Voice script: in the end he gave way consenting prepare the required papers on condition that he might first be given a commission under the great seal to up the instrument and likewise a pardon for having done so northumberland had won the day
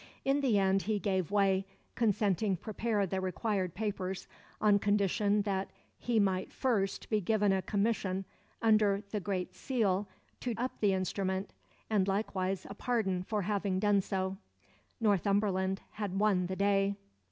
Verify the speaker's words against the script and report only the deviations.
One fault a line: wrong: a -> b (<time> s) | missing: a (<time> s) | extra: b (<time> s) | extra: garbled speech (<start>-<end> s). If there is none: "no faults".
no faults